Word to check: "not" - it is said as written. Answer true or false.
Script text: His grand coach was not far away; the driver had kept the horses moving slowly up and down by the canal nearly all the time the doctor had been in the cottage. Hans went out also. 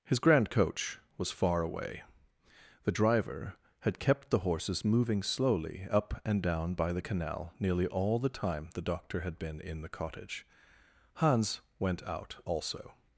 false